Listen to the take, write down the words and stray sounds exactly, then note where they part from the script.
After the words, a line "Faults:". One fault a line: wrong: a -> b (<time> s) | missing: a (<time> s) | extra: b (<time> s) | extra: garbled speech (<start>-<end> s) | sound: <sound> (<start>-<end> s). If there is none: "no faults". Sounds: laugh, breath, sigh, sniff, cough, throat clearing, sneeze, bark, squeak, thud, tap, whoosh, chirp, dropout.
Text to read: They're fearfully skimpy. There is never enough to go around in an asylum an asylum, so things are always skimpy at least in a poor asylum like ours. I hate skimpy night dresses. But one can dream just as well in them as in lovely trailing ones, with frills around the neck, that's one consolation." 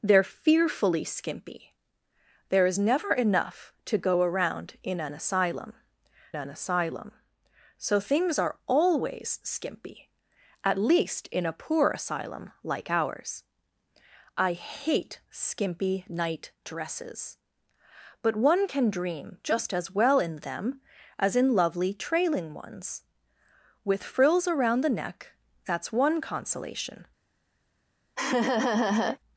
They're fearfully skimpy. There is never enough to go around in an asylum an asylum, so things are always skimpy at least in a poor asylum like ours. I hate skimpy night dresses. But one can dream just as well in them as in lovely trailing ones, with frills around the neck, that's one consolation."
Faults:
sound: laugh (28.2-29.2 s)